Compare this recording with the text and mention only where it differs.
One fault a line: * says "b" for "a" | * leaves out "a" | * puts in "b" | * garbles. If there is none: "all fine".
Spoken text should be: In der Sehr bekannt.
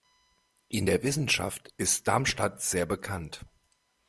* puts in "Wissenschaft ist Darmstadt"